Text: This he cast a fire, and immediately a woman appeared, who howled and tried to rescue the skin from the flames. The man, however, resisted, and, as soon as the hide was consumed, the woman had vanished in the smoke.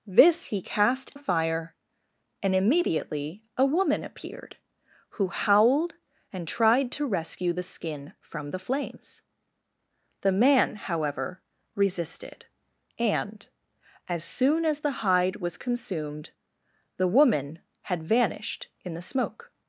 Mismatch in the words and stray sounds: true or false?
false